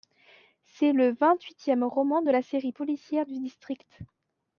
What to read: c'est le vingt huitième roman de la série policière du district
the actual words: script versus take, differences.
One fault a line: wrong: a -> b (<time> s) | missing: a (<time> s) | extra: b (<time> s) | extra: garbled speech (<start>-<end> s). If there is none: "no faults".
no faults